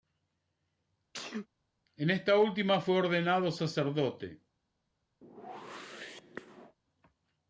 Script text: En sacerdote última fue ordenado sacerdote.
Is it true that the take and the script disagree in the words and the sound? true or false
true